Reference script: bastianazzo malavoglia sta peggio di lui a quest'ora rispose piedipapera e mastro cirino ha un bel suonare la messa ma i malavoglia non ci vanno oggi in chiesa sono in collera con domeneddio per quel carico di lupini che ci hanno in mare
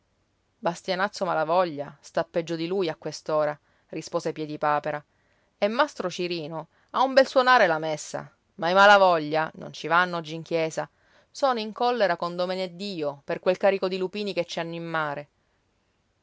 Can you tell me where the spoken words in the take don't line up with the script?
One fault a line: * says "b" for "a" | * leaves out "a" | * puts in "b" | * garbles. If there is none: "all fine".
all fine